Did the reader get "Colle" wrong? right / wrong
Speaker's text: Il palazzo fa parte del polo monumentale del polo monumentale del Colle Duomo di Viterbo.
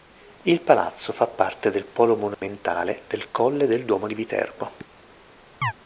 wrong